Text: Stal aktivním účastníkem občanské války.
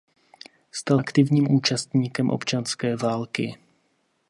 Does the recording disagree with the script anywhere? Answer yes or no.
no